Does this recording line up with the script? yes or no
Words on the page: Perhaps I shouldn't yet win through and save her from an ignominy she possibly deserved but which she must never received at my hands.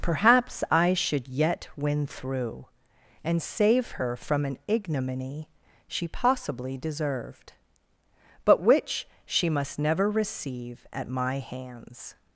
no